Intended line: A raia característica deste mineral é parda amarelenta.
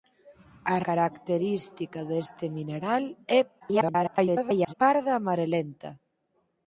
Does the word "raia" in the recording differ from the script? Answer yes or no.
yes